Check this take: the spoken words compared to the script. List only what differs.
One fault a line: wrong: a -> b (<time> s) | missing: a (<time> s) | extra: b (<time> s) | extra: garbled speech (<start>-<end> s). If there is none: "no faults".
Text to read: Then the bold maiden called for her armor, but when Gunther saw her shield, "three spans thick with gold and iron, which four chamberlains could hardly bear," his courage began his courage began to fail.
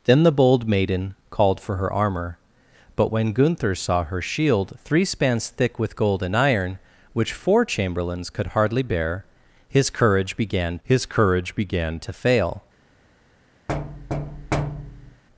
no faults